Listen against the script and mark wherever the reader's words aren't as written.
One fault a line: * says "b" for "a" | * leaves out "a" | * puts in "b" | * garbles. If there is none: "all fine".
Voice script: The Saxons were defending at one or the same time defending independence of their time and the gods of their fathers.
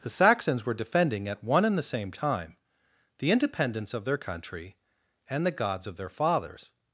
* says "and" for "or"
* says "the" for "defending"
* says "country" for "time"